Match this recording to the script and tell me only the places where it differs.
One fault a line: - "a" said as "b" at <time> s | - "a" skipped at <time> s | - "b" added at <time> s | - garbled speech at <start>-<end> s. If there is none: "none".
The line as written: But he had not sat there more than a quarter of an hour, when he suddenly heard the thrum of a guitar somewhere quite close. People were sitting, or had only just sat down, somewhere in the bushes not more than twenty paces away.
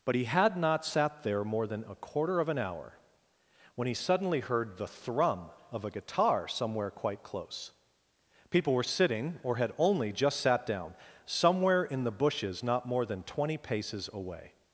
none